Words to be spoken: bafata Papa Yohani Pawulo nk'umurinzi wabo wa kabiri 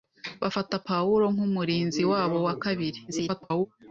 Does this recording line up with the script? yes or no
no